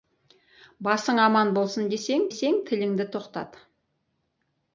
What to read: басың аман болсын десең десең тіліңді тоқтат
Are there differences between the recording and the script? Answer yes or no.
no